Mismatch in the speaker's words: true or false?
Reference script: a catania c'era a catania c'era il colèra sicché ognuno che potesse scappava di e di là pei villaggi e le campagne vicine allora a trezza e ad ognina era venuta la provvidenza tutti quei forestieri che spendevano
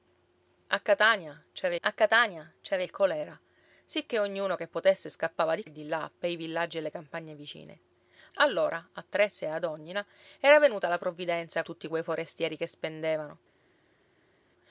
false